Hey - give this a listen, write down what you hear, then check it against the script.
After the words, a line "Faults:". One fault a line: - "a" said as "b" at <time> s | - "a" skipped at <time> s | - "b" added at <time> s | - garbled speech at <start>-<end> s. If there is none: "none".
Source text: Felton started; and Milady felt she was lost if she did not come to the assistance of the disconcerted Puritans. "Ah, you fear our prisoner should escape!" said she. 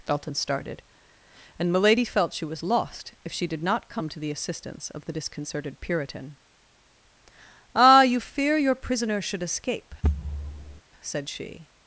Felton started; and Milady felt she was lost if she did not come to the assistance of the disconcerted Puritan. "Ah, you fear your prisoner should escape!" said she.
Faults:
- "Puritans" said as "Puritan" at 5.8 s
- "our" said as "your" at 8.6 s